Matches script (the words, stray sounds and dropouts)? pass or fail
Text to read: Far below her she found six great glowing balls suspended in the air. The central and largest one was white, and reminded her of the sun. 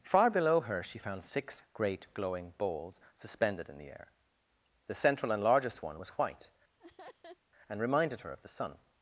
fail